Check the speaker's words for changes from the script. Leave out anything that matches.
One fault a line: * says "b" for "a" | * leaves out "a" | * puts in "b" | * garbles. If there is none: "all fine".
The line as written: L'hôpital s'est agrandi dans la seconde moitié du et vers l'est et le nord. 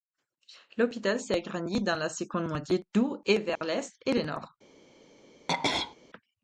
all fine